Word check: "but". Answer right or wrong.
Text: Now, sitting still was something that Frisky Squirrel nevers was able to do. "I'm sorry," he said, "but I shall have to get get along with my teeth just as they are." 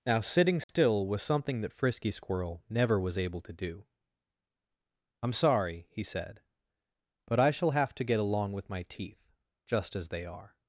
right